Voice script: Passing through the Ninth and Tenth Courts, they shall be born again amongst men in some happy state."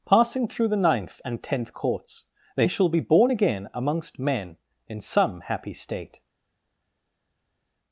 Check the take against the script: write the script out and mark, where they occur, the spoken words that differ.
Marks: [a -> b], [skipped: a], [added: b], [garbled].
Passing through the Ninth and Tenth Courts, they shall be born again amongst men in some happy state."